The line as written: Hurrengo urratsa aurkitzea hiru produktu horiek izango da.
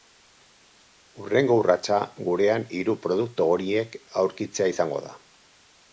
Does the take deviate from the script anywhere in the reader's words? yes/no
yes